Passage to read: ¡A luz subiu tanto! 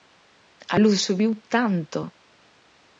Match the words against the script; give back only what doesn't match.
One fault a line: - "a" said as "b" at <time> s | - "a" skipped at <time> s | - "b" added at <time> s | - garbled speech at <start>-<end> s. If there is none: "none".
none